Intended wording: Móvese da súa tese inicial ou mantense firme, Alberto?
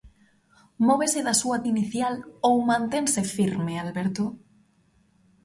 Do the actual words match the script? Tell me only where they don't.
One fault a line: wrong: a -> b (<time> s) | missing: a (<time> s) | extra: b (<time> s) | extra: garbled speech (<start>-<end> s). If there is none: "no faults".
missing: tese (1.6 s)